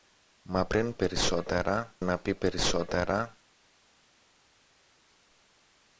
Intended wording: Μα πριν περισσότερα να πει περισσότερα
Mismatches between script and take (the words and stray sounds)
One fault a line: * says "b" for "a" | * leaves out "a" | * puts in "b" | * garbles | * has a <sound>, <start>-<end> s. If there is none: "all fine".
all fine